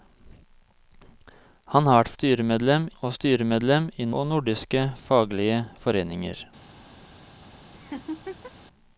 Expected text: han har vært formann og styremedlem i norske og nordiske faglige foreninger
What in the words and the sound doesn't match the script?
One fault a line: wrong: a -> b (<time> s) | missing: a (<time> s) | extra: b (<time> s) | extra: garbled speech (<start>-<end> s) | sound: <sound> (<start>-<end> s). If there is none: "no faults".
wrong: formann -> styremedlem (2.1 s)
missing: norske (4.1 s)
sound: laugh (7.7-8.5 s)